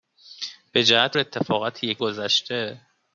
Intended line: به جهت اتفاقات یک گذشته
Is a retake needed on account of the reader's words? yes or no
no